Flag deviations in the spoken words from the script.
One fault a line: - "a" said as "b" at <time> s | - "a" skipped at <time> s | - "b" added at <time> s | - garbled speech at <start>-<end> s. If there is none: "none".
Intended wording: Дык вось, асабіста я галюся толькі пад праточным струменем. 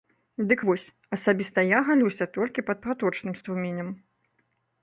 none